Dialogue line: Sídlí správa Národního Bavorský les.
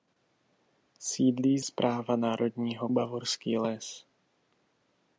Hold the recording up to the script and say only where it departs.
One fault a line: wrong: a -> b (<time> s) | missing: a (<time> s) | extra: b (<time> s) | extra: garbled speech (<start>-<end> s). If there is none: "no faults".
no faults